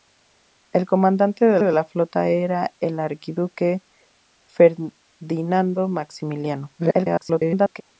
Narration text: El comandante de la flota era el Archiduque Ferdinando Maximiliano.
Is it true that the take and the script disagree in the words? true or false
true